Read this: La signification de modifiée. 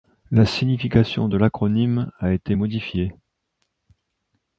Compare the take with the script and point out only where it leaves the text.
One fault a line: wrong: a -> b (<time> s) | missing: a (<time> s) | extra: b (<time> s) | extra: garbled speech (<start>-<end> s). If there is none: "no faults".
extra: l'acronyme a été (1.3 s)